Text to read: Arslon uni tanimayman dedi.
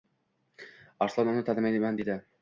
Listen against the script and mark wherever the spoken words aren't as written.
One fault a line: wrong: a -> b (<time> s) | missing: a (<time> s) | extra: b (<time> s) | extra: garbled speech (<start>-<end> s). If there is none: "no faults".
no faults